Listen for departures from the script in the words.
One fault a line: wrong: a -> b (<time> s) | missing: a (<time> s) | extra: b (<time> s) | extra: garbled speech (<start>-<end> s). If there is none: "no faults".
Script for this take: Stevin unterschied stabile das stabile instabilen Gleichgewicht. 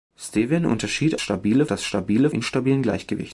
no faults